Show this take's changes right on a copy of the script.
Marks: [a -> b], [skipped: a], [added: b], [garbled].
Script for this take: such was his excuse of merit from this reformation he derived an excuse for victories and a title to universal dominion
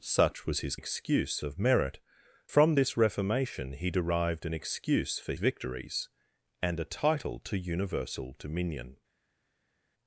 such was his excuse of merit from this reformation he derived an excuse for victories and a title to universal dominion